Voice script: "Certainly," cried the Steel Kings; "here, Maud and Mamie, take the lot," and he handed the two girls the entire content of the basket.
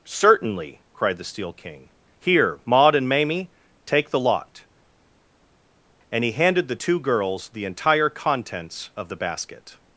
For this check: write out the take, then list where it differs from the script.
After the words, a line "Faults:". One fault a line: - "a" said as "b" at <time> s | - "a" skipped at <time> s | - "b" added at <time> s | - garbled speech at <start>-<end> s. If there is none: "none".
"Certainly," cried the Steel King; "here, Maud and Mamie, take the lot," and he handed the two girls the entire contents of the basket.
Faults:
- "Kings" said as "King" at 1.5 s
- "content" said as "contents" at 8.1 s